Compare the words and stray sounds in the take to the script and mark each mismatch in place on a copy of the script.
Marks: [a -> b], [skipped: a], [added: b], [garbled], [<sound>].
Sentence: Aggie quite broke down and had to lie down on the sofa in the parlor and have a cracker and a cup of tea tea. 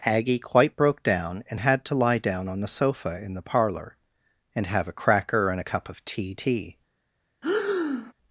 Aggie quite broke down and had to lie down on the sofa in the parlor and have a cracker and a cup of tea tea. [breath]